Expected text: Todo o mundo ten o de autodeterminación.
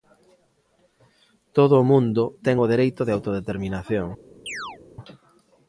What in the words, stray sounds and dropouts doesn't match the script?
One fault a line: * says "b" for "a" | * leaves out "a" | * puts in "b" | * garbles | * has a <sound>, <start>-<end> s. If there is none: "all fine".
* puts in "dereito"
* has a chirp, 4.5-4.8 s